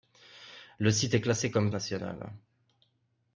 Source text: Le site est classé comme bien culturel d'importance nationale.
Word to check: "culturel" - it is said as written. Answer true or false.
false